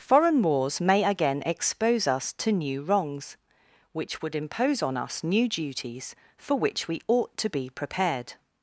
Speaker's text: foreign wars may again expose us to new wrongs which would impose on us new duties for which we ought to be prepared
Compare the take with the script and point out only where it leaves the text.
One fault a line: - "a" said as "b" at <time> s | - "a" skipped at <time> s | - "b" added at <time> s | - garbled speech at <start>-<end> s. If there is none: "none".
none